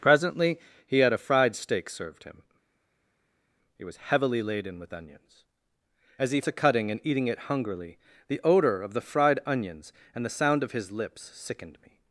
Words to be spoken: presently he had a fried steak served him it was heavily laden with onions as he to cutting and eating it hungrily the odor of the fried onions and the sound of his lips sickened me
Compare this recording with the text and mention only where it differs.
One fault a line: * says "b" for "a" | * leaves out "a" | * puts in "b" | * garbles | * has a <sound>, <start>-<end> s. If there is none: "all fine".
all fine